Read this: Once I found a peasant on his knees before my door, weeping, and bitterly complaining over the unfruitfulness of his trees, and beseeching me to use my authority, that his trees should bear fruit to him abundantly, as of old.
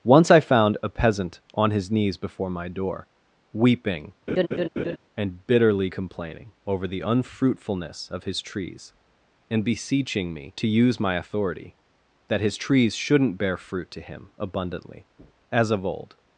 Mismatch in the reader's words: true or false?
true